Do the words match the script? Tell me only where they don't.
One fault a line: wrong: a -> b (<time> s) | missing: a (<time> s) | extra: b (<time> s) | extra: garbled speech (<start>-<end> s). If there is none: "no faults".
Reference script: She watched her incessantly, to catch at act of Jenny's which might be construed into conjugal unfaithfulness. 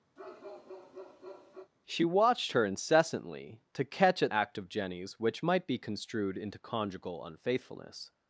no faults